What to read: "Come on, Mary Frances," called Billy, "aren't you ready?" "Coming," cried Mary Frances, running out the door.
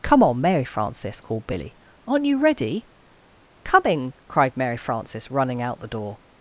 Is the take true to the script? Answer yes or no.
yes